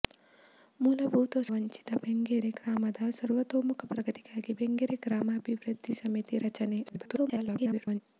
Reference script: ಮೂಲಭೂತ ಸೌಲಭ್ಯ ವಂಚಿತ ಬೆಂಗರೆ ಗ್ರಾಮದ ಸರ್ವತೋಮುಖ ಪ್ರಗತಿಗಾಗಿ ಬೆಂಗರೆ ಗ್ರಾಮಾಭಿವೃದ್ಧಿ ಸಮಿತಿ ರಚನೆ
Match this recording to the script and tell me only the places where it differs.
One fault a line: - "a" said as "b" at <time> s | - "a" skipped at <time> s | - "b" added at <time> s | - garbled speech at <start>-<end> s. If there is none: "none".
- "ಸೌಲಭ್ಯ" skipped at 1.4 s
- garbled speech at 6.9-8.0 s